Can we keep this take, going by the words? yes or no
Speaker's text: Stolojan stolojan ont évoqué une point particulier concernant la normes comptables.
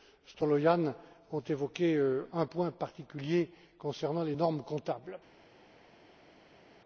no